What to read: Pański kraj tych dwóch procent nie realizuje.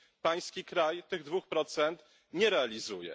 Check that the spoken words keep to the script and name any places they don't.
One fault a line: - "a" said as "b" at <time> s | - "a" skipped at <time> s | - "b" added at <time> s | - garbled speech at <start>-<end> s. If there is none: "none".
none